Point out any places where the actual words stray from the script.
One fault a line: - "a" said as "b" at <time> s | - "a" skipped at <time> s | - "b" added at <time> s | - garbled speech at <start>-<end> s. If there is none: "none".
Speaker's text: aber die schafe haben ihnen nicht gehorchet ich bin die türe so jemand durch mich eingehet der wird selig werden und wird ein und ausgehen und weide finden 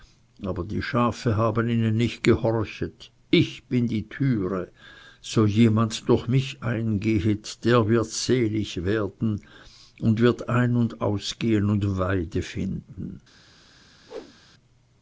none